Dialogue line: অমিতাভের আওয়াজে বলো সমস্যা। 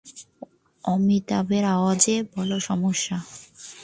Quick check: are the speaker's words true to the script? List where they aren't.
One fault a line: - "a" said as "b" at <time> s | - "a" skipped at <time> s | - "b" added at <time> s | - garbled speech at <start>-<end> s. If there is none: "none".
none